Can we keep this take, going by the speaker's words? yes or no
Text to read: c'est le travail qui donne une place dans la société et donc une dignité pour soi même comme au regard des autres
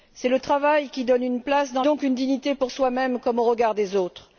no